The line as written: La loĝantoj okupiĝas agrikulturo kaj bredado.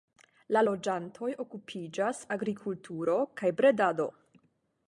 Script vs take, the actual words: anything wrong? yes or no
no